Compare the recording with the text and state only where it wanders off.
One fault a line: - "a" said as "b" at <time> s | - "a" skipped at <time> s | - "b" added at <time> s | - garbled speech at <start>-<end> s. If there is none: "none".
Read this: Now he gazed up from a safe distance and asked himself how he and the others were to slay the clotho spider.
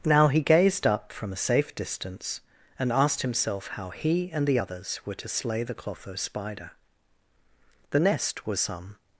- "The nest was some" added at 7.9 s